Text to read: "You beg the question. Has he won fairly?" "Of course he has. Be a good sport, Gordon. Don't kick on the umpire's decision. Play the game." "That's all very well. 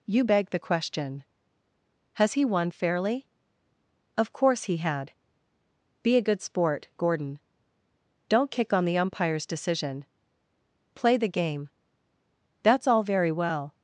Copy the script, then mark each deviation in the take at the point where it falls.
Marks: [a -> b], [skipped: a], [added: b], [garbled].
"You beg the question. Has he won fairly?" "Of course he [has. -> had] Be a good sport, Gordon. Don't kick on the umpire's decision. Play the game." "That's all very well.